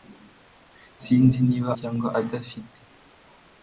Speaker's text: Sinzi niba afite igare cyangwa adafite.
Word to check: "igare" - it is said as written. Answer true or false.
false